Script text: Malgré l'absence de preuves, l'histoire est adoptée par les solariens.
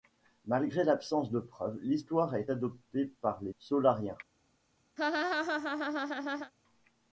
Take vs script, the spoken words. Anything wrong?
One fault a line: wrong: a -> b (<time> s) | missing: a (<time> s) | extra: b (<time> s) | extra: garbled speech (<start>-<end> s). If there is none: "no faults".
no faults